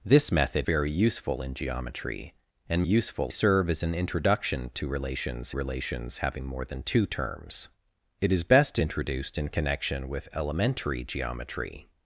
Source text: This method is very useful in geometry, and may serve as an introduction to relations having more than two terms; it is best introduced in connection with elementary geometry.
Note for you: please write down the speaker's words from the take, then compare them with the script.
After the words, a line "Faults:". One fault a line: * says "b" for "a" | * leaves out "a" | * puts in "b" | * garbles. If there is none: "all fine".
This method very useful in geometry, and useful serve as an introduction to relations relations having more than two terms; it is best introduced in connection with elementary geometry.
Faults:
* leaves out "is"
* says "useful" for "may"
* puts in "relations"